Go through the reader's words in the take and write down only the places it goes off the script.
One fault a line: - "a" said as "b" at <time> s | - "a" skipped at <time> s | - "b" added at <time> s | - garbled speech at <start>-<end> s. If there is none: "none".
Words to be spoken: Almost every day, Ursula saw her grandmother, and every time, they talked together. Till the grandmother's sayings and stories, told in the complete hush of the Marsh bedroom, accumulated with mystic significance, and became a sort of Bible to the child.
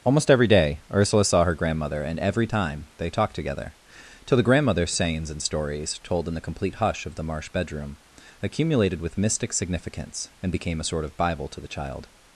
none